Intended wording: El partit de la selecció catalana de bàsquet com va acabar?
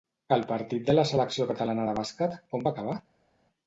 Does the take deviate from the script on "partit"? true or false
false